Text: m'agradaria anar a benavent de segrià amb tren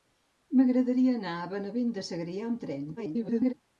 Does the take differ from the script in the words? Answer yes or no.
yes